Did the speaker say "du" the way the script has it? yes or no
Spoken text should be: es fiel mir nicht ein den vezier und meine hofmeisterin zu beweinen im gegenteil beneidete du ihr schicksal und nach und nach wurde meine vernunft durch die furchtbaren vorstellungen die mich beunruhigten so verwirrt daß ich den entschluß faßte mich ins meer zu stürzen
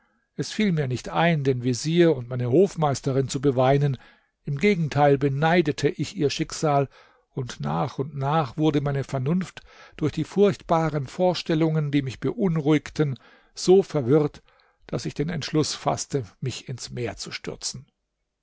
no